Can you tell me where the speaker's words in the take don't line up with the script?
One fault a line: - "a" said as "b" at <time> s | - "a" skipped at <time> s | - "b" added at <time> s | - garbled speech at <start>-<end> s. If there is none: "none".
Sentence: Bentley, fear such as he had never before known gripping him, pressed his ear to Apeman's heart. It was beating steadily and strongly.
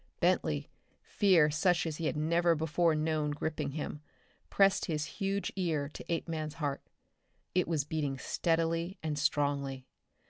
- "huge" added at 5.2 s